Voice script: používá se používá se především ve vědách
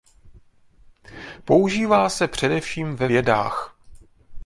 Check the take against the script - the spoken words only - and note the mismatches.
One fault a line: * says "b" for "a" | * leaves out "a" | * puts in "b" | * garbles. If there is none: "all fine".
* leaves out "používá se"